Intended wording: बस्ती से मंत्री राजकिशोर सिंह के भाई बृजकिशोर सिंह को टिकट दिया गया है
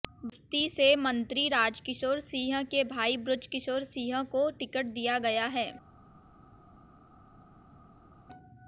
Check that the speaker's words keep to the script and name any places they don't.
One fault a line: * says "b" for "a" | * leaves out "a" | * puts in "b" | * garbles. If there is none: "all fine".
all fine